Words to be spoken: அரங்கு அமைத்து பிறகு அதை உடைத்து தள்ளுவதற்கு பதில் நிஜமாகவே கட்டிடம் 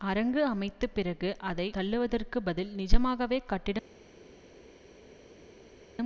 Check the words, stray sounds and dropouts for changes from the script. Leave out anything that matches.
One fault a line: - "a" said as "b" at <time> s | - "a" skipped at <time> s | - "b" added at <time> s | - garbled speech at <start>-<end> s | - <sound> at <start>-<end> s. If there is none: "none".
- "உடைத்து" skipped at 1.7 s